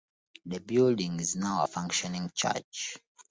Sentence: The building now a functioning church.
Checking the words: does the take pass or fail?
fail